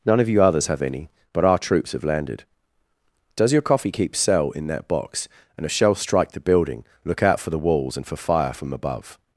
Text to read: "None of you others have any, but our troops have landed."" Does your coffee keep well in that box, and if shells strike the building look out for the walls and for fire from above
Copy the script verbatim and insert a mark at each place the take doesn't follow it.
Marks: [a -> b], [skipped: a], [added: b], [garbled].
"None of you others have any, but our troops have landed."" Does your coffee keep [well -> cell] in that box, and if shells strike the building look out for the walls and for fire from above